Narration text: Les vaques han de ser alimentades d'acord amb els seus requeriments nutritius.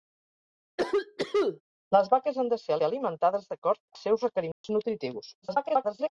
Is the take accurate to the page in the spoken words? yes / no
no